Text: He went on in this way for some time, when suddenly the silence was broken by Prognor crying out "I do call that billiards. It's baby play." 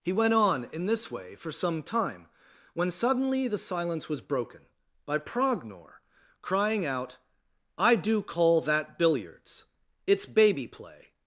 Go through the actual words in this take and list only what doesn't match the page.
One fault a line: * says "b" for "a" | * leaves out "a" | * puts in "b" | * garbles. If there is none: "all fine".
all fine